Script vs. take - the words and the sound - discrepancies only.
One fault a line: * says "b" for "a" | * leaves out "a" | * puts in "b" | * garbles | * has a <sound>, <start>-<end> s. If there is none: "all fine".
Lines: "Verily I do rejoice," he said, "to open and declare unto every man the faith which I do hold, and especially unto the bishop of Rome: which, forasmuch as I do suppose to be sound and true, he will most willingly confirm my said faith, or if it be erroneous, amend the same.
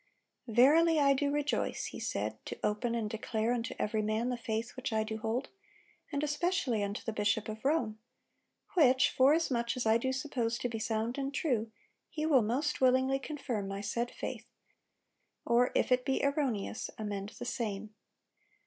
all fine